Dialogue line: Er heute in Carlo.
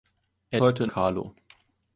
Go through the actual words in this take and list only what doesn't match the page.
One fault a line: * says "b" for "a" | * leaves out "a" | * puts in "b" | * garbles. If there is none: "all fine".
all fine